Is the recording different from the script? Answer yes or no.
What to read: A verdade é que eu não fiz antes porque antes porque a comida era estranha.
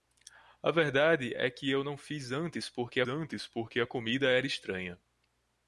no